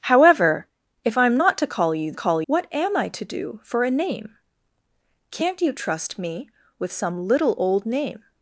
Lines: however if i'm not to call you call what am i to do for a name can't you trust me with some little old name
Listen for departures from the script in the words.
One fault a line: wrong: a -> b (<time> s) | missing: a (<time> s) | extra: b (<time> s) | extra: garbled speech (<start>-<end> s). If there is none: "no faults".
no faults